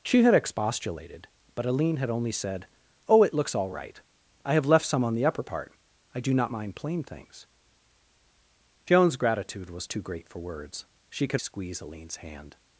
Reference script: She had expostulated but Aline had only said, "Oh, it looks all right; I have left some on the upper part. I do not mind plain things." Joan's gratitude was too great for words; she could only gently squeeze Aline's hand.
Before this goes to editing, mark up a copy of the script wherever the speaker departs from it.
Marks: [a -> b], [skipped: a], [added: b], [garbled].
She had expostulated but Aline had only said, "Oh, it looks all right; I have left some on the upper part. I do not mind plain things." Joan's gratitude was too great for words; she could [skipped: only gently] squeeze Aline's hand.